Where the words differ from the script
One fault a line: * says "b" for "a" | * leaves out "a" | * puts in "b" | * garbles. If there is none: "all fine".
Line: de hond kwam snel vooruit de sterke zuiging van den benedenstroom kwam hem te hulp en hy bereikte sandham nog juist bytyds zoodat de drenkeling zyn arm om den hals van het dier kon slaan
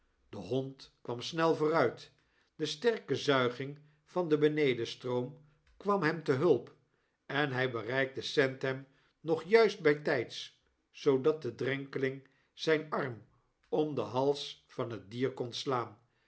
all fine